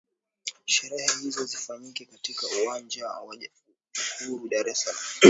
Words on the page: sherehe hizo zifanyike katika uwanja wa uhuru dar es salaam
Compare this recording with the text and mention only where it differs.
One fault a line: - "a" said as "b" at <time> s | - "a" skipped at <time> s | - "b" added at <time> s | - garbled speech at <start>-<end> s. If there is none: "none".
none